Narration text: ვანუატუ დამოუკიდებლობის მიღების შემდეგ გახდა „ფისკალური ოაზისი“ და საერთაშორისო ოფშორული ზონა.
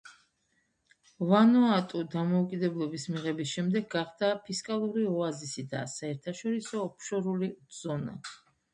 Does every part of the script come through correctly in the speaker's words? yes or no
yes